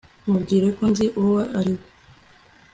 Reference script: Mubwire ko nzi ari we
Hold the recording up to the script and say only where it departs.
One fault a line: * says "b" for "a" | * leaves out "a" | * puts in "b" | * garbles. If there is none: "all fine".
* puts in "uwo"